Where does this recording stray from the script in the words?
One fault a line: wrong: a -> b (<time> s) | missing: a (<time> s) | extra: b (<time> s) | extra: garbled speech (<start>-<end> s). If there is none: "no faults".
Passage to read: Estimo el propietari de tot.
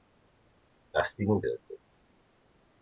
missing: propietari (1.4 s)